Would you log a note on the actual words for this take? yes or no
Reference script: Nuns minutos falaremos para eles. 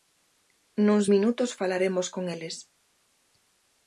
yes